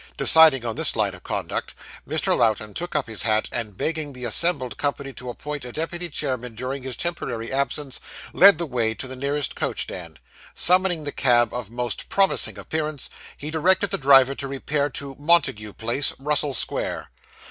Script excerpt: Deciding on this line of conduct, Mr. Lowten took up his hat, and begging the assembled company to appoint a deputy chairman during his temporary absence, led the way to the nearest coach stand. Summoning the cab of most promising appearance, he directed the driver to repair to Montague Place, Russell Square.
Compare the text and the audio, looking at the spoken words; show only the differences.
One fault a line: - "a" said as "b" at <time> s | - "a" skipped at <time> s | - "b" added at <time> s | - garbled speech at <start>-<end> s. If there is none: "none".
none